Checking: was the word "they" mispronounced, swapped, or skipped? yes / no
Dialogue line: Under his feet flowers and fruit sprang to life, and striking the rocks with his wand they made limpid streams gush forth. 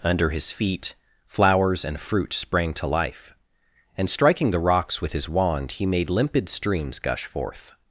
yes